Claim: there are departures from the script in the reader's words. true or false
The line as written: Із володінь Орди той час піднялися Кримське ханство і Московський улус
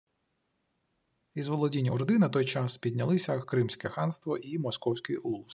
true